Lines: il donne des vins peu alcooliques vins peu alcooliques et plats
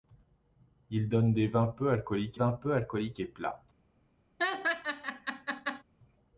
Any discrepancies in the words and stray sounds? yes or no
yes